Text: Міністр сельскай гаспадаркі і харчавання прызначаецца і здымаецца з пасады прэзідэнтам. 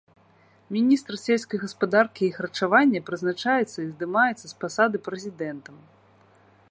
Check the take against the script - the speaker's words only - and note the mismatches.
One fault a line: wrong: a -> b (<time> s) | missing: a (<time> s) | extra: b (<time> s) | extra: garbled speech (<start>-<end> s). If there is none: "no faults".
no faults